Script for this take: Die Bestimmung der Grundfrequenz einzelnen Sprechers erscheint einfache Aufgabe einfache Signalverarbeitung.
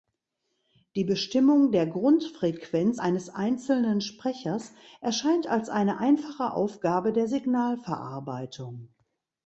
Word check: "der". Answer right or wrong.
right